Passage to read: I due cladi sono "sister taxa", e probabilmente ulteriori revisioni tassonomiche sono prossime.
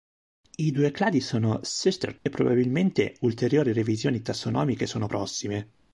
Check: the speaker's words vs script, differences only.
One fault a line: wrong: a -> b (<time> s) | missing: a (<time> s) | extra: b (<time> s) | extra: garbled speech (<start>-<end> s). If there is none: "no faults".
missing: taxa (2.1 s)